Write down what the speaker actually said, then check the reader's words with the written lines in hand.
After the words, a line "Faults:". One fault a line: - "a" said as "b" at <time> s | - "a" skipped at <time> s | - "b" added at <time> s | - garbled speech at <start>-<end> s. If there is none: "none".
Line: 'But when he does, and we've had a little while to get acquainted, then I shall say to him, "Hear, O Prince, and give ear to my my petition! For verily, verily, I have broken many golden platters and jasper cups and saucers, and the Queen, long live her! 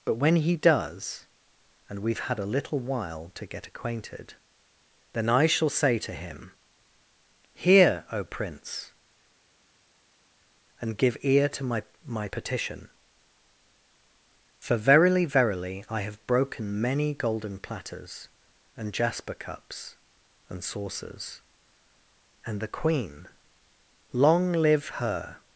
'But when he does, and we've had a little while to get acquainted, then I shall say to him, "Hear, O Prince, and give ear to my my petition! For verily, verily, I have broken many golden platters and jasper cups and saucers, and the Queen, long live her!
Faults:
none